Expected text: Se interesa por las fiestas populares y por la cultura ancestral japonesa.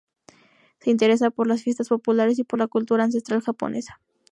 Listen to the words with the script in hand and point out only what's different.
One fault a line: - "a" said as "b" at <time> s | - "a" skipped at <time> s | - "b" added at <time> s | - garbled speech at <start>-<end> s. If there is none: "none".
none